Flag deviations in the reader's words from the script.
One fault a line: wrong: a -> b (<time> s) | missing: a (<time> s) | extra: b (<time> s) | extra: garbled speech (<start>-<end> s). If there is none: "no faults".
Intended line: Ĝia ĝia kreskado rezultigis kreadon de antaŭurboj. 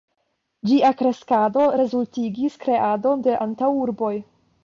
missing: ĝia (0.9 s)